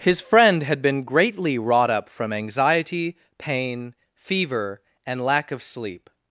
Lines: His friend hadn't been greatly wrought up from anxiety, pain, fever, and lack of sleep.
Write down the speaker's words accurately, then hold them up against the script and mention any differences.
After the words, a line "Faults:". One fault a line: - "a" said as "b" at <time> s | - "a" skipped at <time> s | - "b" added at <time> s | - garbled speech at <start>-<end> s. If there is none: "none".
His friend had been greatly wrought up from anxiety, pain, fever, and lack of sleep.
Faults:
- "hadn't" said as "had" at 0.6 s